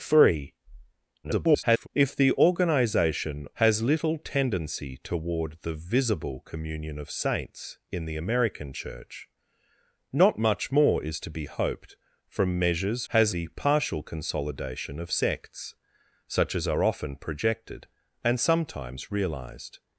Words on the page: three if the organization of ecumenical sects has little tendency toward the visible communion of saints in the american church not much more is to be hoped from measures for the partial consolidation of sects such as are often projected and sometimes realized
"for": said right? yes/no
no